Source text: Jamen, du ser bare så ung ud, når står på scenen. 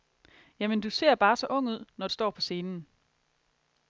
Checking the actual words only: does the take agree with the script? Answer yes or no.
yes